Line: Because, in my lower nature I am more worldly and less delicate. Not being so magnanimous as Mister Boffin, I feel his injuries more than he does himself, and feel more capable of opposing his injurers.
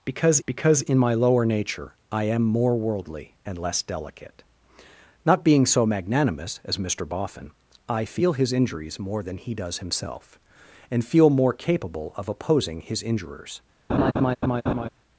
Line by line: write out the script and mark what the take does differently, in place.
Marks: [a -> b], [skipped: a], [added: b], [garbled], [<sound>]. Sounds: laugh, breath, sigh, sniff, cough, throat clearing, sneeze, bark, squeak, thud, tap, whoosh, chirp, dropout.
Because, [added: because] in my lower nature I am more worldly and less delicate. Not being so magnanimous as Mister Boffin, I feel his injuries more than he does himself, and feel more capable of opposing his injurers. [laugh]